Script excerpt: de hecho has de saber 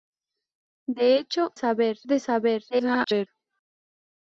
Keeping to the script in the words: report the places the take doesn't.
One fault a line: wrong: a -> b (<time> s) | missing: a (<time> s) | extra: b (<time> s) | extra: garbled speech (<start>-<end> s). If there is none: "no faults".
wrong: has -> saber (1.5 s)
extra: garbled speech (2.7-3.3 s)